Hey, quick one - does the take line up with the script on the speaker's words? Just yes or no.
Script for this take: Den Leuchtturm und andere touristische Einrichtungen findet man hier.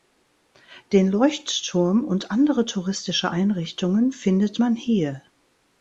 yes